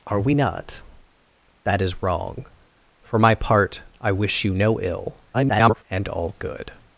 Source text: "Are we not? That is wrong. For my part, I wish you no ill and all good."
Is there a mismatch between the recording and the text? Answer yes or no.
yes